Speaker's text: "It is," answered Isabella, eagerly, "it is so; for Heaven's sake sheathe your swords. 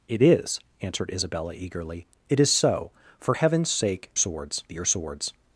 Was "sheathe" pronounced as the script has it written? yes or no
no